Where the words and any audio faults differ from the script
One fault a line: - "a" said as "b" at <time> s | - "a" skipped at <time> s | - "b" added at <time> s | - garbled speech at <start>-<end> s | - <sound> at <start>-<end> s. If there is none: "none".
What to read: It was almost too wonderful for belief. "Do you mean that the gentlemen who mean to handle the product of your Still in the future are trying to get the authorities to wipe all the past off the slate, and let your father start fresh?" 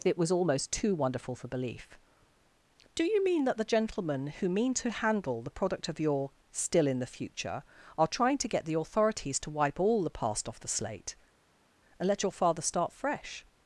none